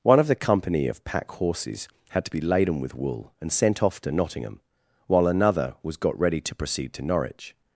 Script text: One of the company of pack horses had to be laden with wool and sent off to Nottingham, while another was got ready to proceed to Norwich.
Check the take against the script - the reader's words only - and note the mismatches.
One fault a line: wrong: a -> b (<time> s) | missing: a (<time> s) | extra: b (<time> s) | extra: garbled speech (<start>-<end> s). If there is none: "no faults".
no faults